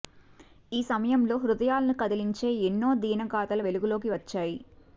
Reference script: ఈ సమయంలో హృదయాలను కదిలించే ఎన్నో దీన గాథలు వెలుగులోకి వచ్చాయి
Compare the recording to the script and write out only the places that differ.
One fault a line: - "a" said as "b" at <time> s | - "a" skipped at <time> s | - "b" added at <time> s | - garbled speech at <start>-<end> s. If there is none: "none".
none